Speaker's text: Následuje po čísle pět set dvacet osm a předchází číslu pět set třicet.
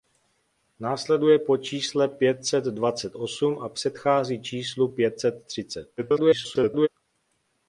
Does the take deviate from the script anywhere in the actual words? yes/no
yes